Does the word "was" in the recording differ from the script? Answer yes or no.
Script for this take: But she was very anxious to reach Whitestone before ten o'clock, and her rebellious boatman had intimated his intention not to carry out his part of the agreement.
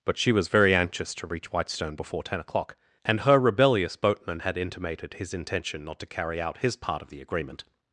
no